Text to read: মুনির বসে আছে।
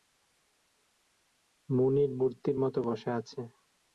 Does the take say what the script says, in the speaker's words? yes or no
no